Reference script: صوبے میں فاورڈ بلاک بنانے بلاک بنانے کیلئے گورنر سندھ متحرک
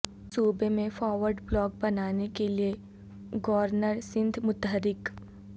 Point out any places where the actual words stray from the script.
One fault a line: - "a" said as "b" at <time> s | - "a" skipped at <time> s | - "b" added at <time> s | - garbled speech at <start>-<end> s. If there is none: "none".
- "بلاک بنانے" skipped at 2.3 s